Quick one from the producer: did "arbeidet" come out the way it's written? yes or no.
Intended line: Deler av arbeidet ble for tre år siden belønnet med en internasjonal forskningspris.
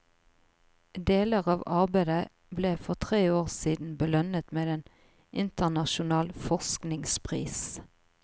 yes